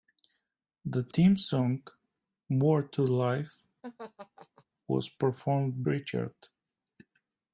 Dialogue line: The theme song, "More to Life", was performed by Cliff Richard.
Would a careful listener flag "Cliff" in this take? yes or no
yes